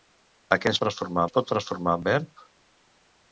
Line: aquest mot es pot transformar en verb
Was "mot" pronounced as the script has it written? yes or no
no